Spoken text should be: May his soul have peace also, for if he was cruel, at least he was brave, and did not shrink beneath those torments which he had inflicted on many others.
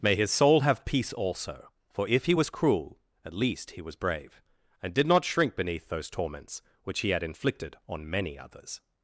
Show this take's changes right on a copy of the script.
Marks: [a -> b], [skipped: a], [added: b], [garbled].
May his soul have peace also, for if he was cruel, at least he was brave, and did not shrink beneath those torments which he had inflicted on many others.